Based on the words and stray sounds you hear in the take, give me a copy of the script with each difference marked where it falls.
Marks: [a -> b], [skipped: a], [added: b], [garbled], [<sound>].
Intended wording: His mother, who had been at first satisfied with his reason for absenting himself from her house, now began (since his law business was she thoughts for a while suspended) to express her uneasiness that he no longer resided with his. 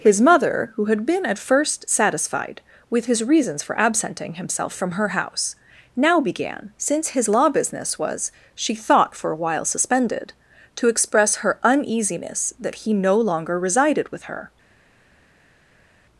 His mother, who had been at first satisfied with his [reason -> reasons] for absenting himself from her house, now began (since his law business was she [thoughts -> thought] for a while suspended) to express her uneasiness that he no longer resided with [his. -> her]